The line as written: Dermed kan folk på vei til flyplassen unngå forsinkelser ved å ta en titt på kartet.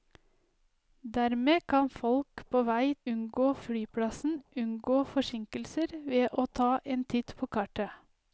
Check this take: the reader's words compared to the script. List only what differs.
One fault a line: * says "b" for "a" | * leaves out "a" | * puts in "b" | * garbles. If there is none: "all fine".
* says "unngå" for "til"